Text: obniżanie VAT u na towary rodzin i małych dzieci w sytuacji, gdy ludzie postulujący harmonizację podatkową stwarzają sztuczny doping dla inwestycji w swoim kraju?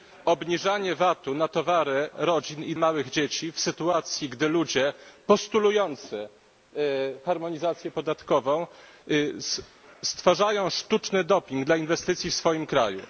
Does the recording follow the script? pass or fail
pass